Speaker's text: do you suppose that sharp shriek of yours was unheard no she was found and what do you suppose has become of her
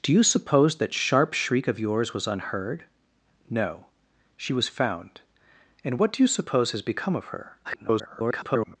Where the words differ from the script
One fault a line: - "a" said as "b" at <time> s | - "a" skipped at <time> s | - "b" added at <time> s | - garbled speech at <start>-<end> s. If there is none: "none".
- garbled speech at 7.6-8.8 s